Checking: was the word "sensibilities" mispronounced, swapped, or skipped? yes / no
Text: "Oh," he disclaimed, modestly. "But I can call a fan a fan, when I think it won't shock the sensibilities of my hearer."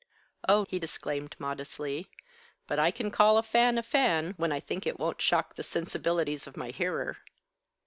no